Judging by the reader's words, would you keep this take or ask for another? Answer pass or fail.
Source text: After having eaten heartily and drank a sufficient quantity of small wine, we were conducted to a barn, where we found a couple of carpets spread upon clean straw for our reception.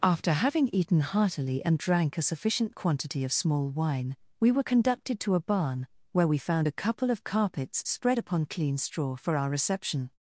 pass